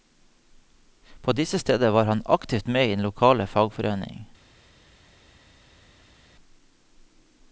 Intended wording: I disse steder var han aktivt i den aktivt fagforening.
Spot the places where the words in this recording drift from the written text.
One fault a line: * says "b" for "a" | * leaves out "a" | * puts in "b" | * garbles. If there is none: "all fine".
* says "På" for "I"
* puts in "med"
* says "lokale" for "aktivt"